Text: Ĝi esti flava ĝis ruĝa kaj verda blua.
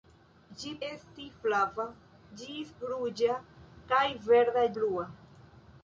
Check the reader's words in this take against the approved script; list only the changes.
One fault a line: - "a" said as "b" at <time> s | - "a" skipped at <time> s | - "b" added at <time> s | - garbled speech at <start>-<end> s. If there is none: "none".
none